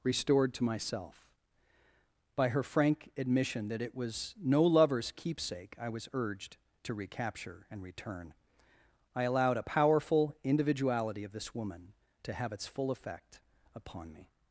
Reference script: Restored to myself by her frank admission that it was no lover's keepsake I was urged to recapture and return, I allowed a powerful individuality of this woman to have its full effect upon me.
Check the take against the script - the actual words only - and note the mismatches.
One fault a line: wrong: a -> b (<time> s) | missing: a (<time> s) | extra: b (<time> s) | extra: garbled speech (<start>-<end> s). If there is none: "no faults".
no faults